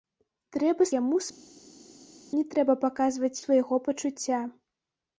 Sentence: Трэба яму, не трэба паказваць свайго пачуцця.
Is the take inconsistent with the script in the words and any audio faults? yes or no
no